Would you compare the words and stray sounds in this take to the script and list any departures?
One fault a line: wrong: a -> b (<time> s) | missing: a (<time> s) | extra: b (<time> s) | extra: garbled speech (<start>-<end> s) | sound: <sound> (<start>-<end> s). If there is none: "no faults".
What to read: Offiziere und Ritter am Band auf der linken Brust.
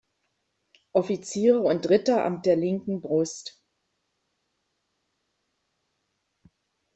missing: Band auf (2.4 s)